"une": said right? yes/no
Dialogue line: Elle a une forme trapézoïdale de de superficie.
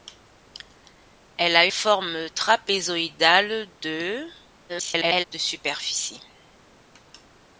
no